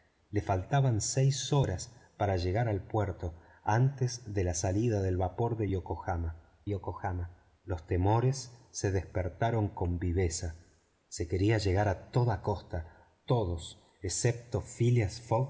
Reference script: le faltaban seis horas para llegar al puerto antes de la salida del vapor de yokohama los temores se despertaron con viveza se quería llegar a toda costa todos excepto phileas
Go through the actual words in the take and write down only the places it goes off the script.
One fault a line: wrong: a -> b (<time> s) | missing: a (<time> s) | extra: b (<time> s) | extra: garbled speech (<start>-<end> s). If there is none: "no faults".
extra: yokohama (6.7 s)